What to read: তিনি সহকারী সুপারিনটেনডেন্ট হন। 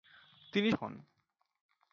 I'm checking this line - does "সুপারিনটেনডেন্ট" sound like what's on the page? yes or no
no